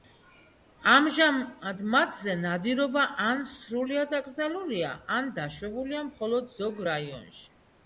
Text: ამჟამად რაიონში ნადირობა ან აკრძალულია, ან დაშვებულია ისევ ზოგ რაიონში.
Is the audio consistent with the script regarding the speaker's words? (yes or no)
no